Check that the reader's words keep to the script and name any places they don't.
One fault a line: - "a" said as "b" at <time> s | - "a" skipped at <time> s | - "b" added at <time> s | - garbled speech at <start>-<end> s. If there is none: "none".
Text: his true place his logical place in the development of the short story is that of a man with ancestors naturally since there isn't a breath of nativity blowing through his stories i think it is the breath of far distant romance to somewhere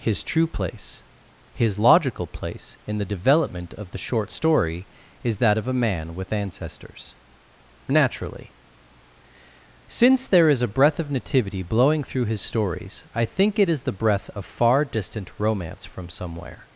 - "isn't" said as "is" at 10.5 s
- "to" said as "from" at 15.8 s